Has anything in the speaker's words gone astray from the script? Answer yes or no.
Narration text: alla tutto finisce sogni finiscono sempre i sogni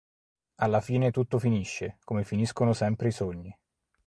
yes